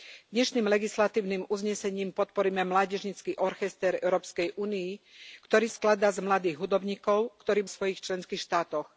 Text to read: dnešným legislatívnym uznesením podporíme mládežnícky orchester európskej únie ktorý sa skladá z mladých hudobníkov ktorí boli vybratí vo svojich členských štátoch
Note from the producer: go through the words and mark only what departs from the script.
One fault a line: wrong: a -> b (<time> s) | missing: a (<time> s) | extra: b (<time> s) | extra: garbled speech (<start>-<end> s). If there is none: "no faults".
missing: sa (5.7 s)
missing: boli vybratí vo (7.7 s)